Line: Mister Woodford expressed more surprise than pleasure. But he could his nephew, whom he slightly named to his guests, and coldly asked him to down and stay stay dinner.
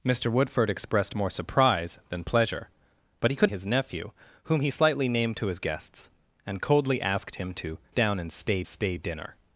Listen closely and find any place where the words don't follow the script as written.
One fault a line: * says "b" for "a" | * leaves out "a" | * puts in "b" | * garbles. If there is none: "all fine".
all fine